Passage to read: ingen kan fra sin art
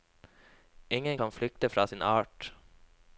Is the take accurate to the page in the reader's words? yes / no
no